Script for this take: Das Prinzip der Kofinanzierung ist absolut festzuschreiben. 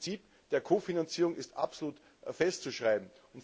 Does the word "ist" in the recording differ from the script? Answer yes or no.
no